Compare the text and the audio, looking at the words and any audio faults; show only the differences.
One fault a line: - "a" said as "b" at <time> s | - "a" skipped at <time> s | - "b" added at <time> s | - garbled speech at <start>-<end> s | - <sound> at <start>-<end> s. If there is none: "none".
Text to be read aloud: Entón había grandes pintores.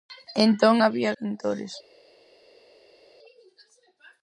- "grandes" skipped at 1.1 s